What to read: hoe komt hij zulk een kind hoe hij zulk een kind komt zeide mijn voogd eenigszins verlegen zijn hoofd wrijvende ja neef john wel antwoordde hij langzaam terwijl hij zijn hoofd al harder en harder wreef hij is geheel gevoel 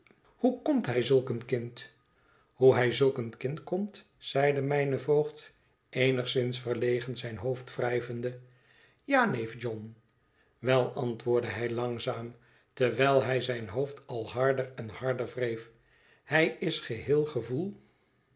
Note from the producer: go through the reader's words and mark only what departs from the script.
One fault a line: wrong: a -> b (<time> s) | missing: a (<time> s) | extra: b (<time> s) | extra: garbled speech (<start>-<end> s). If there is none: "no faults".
no faults